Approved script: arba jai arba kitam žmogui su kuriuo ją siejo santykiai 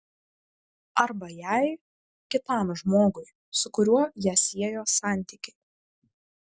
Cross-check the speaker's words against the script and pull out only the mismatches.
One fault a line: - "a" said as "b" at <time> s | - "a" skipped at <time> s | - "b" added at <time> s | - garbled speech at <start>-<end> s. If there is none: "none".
- "arba" skipped at 1.7 s